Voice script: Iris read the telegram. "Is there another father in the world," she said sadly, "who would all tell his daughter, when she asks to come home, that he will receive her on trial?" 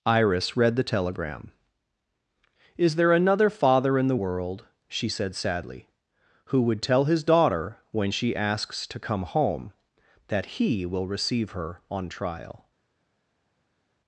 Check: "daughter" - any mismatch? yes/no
no